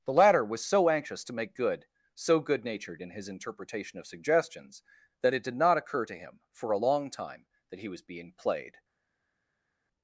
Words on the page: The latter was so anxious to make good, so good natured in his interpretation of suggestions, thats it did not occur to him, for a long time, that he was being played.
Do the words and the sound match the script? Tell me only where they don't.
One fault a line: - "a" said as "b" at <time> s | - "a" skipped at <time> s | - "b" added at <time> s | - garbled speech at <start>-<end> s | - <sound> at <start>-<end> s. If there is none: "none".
- "thats" said as "that" at 5.2 s